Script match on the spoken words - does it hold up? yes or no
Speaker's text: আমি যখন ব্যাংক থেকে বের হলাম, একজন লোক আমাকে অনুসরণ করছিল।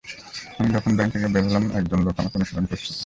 yes